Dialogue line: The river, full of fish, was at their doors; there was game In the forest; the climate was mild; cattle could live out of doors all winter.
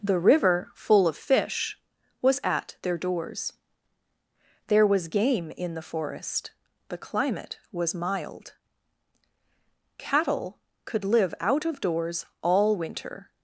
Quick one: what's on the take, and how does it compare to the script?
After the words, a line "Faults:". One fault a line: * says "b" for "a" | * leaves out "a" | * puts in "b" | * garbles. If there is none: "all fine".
The river, full of fish, was at their doors; there was game In the forest; the climate was mild; cattle could live out of doors all winter.
Faults:
all fine